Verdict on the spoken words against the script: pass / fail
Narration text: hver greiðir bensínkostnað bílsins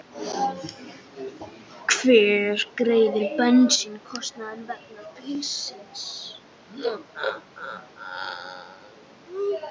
fail